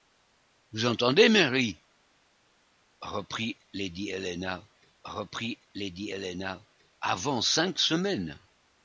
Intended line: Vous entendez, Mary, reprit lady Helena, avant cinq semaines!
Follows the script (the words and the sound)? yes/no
no